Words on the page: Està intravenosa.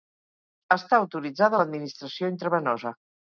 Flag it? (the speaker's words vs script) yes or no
yes